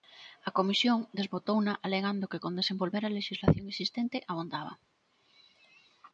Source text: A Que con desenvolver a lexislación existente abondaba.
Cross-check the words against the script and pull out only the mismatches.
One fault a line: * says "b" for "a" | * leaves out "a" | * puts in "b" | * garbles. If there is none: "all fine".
* puts in "Comisión desbotouna alegando"